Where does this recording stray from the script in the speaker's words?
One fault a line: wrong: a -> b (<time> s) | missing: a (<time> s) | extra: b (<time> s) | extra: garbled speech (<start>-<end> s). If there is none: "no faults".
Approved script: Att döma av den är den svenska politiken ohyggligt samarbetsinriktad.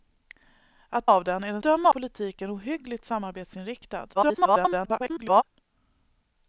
missing: döma (1.1 s)
wrong: svenska -> döma (1.6 s)
extra: garbled speech (4.1-5.4 s)